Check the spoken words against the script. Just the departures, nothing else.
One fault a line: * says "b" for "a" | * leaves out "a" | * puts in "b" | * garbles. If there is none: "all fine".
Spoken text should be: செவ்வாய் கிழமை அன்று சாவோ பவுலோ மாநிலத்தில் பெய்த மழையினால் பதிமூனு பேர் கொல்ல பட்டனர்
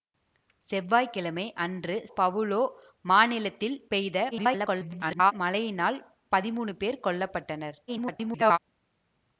* leaves out "சாவோ"
* garbles
* garbles